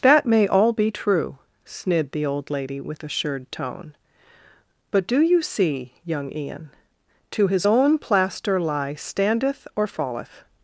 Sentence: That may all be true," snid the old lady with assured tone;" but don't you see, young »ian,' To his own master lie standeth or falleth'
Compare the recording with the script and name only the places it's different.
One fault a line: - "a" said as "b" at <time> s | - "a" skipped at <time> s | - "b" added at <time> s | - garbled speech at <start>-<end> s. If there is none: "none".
- "don't" said as "do" at 5.1 s
- "master" said as "plaster" at 8.0 s